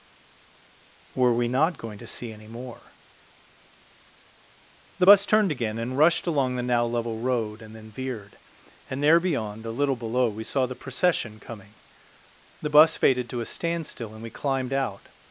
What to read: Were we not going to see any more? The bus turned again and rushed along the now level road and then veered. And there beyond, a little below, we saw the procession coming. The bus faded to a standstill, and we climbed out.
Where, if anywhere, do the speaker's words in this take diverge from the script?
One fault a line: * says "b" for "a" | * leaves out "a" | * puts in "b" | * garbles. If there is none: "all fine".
all fine